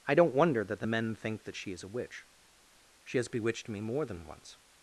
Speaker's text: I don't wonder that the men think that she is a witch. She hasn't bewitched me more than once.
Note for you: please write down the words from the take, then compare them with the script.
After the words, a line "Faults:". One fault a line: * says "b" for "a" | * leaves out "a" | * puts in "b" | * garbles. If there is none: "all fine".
I don't wonder that the men think that she is a witch. She has bewitched me more than once.
Faults:
* says "has" for "hasn't"